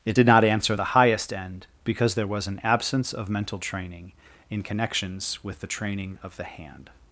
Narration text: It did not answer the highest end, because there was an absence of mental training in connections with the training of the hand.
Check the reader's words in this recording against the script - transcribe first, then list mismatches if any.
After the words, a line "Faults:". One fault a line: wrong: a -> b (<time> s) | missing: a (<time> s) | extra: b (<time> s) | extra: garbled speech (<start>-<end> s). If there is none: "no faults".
It did not answer the highest end, because there was an absence of mental training in connections with the training of the hand.
Faults:
no faults